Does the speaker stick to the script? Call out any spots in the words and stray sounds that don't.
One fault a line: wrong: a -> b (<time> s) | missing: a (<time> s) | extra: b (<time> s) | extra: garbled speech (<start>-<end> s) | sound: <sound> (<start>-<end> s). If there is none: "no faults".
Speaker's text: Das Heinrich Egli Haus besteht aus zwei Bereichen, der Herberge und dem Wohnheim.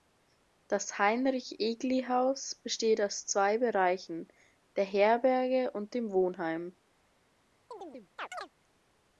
sound: chirp (7.7-8.5 s)